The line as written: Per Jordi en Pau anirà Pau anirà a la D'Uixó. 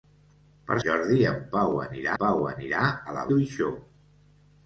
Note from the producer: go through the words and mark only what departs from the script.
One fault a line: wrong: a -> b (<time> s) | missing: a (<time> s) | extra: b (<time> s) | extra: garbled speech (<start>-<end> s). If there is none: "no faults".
no faults